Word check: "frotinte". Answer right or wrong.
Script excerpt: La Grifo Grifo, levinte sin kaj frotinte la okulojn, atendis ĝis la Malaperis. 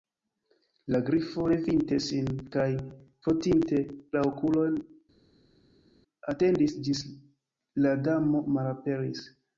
right